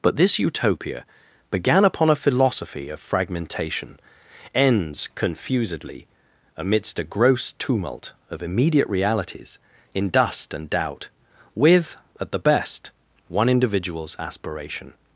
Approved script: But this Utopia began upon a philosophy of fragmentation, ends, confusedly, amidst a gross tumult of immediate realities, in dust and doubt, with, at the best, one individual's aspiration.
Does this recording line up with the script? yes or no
yes